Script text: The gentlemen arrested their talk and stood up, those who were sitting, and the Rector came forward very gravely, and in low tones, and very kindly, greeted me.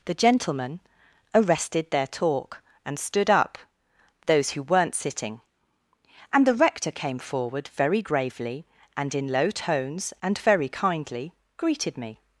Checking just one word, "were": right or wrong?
wrong